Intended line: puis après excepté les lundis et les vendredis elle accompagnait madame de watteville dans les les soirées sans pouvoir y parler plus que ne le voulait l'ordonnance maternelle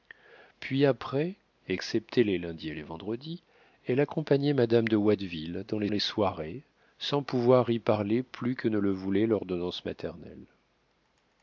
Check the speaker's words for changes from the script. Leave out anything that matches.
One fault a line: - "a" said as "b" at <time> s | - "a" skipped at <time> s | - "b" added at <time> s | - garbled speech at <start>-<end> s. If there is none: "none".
none